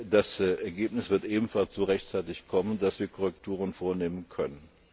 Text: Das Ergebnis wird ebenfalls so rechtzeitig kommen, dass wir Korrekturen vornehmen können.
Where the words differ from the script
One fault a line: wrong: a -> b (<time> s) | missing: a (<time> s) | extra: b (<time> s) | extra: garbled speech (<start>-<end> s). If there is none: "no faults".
no faults